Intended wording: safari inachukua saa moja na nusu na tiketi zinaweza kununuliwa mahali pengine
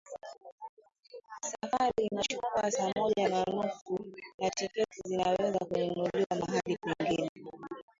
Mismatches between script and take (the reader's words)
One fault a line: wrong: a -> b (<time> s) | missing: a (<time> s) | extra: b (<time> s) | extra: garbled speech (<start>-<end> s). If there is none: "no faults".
no faults